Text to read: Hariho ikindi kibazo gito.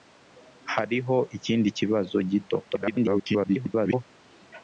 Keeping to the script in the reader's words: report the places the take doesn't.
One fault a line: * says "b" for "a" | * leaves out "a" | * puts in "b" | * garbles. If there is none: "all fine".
* garbles